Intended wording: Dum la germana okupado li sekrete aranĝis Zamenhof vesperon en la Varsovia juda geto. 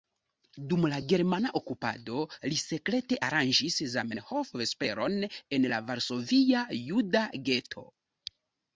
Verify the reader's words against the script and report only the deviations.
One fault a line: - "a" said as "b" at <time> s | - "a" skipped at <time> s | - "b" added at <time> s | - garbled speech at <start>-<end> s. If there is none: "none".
none